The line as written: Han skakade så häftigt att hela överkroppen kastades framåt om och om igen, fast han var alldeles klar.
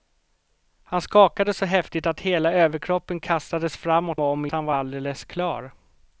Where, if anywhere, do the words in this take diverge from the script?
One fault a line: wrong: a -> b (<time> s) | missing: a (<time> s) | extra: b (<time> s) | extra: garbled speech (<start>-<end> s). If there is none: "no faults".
missing: om (4.2 s)
missing: igen fast (4.5 s)